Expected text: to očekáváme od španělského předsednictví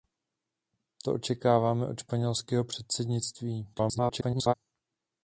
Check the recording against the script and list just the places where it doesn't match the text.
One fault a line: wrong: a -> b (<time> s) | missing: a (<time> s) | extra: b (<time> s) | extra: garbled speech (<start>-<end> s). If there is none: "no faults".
extra: garbled speech (3.7-4.5 s)